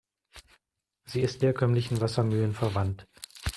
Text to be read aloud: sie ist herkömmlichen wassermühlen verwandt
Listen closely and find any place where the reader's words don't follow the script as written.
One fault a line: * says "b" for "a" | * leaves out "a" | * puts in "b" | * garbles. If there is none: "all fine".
all fine